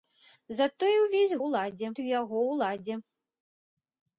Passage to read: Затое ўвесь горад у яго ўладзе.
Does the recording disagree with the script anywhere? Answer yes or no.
yes